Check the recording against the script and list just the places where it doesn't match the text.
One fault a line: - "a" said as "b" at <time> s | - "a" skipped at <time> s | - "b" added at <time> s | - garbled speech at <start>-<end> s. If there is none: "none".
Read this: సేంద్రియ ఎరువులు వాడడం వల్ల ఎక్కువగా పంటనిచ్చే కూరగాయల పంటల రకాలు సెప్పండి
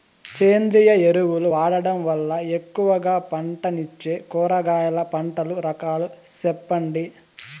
none